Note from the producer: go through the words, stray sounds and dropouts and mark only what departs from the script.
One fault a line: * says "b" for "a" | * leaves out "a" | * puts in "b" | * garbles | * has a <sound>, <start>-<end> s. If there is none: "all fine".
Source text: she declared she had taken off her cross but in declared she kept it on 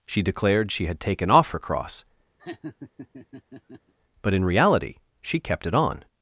* has a laugh, 2.4-3.9 s
* says "reality" for "declared"